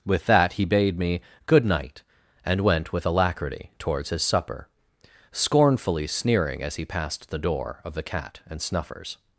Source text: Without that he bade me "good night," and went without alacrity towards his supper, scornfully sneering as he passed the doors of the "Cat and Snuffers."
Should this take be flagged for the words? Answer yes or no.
yes